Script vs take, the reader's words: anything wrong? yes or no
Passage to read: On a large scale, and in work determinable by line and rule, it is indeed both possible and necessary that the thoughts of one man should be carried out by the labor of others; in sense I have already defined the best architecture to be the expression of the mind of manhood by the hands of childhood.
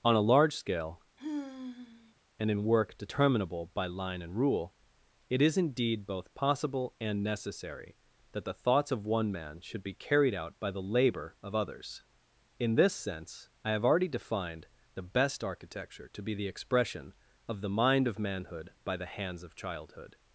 yes